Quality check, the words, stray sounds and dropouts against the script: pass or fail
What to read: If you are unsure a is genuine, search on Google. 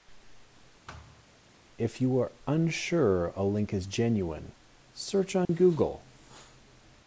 fail